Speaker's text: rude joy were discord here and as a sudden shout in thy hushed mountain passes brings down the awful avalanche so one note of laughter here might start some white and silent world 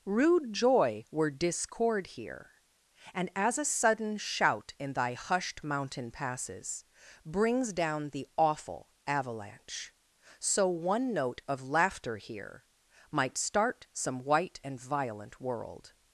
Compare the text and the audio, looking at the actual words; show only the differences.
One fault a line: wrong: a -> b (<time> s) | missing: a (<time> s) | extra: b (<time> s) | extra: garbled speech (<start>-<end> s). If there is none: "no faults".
wrong: silent -> violent (14.8 s)